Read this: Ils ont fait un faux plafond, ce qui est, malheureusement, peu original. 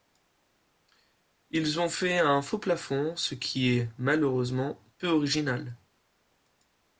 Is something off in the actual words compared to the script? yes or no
no